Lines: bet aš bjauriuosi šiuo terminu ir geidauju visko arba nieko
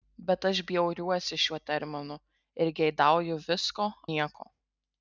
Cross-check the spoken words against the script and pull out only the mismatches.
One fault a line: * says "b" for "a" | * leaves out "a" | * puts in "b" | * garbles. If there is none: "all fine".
* leaves out "arba"